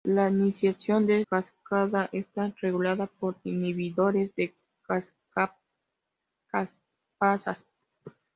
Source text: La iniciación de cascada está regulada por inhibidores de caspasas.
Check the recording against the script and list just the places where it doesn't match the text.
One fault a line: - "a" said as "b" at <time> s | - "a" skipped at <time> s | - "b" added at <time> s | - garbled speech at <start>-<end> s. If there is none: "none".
none